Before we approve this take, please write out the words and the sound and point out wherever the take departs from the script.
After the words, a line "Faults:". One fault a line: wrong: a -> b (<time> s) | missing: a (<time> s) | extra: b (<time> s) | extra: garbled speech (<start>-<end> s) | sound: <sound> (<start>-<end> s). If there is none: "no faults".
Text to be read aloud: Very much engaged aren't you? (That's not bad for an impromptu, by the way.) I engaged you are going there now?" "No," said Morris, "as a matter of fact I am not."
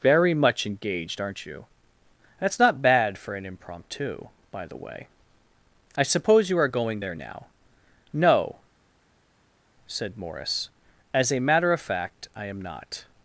Very much engaged aren't you? (That's not bad for an impromptu, by the way.) I suppose you are going there now?" "No," said Morris, "as a matter of fact I am not."
Faults:
wrong: engaged -> suppose (6.0 s)